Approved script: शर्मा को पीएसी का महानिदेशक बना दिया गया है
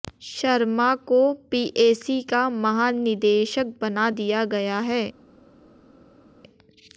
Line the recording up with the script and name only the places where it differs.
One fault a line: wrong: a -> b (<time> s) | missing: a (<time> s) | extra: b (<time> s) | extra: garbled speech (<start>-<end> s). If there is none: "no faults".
no faults